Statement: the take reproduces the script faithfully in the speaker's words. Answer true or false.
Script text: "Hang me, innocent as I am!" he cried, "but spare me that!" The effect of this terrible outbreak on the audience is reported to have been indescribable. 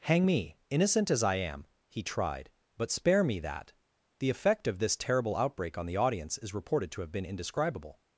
false